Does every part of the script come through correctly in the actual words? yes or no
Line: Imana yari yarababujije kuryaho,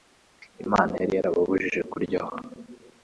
yes